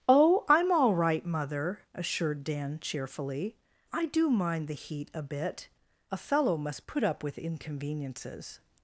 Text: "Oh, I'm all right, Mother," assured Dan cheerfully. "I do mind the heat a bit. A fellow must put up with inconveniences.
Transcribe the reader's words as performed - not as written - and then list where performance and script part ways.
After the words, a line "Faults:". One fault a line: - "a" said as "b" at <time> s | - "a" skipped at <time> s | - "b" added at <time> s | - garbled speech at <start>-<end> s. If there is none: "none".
"Oh, I'm all right, Mother," assured Dan cheerfully. "I do mind the heat a bit. A fellow must put up with inconveniences.
Faults:
none